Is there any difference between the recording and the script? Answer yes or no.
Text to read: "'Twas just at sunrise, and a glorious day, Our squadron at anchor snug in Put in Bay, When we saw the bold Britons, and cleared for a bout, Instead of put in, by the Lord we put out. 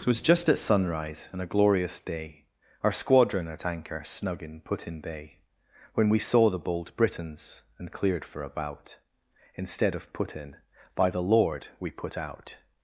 no